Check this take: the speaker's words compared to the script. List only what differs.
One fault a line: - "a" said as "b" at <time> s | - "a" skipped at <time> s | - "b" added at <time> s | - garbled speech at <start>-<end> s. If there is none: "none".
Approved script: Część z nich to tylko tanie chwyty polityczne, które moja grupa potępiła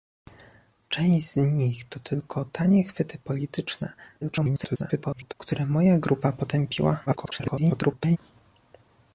- garbled speech at 4.2-5.3 s
- garbled speech at 7.1-8.2 s